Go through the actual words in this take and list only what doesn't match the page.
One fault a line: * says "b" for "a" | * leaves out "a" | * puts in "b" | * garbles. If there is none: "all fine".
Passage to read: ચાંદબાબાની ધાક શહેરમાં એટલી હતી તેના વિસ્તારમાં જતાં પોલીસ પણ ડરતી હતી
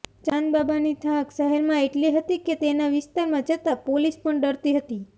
* puts in "કે"